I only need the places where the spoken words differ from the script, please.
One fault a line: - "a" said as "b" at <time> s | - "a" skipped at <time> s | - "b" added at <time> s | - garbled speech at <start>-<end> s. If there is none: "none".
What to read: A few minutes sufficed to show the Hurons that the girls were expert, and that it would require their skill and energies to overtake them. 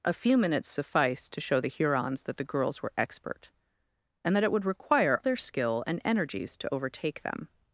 none